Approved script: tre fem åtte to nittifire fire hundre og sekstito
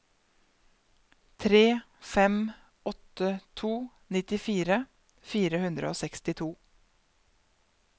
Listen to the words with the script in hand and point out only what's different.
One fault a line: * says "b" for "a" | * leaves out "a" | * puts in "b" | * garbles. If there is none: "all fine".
all fine